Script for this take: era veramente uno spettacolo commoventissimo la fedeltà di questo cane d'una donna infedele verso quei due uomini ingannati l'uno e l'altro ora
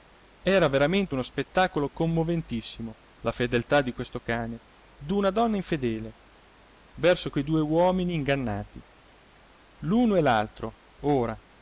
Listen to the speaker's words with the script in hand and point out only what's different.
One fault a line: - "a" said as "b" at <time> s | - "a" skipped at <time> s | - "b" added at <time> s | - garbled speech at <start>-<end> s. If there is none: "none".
none